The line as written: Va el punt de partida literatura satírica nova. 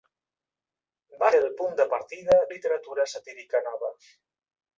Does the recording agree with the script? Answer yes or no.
yes